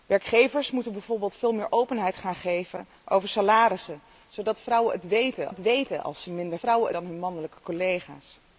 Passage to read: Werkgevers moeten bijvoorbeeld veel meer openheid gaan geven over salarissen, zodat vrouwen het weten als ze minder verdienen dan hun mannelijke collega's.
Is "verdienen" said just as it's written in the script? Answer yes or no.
no